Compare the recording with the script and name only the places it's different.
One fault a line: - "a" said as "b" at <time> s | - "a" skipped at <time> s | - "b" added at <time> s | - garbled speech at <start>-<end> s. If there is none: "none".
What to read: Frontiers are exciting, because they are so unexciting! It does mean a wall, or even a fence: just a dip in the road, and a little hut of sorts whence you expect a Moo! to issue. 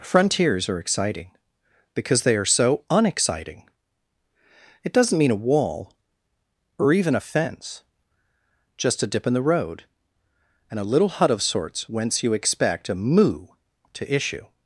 - "does" said as "doesn't" at 4.9 s